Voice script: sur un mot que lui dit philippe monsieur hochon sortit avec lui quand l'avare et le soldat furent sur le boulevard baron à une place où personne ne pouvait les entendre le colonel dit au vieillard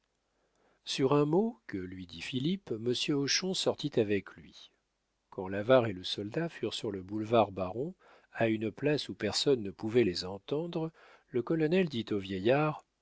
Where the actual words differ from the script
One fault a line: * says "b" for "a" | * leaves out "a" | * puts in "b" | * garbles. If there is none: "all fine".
all fine